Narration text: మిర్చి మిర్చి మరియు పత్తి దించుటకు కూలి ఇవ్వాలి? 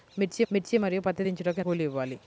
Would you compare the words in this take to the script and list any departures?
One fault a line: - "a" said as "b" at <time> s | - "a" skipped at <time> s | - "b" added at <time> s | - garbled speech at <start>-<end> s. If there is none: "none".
none